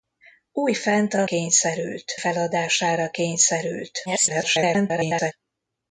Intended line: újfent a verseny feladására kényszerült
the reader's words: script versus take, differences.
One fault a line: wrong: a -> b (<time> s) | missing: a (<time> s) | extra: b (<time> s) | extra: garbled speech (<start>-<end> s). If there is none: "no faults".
wrong: verseny -> kényszerült (1.2 s)
extra: garbled speech (4.1-5.3 s)